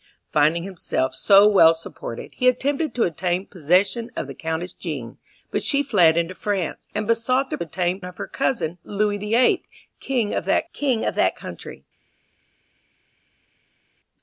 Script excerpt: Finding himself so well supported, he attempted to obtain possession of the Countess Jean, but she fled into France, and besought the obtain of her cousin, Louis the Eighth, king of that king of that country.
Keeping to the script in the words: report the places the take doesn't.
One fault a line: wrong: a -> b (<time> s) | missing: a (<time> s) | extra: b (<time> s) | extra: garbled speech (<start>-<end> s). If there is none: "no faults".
no faults